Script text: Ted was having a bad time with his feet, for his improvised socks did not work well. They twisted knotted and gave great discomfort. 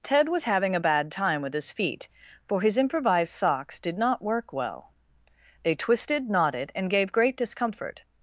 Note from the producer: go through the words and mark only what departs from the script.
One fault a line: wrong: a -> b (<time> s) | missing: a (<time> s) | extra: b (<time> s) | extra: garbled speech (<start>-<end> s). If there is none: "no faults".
no faults